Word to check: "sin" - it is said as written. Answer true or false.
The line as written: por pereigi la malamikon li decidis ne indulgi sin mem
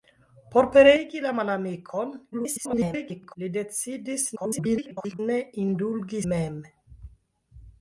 false